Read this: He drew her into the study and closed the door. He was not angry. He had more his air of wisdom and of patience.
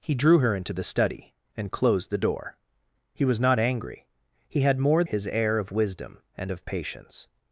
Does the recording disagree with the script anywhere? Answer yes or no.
no